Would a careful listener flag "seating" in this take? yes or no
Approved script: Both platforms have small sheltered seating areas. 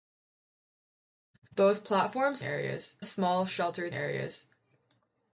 yes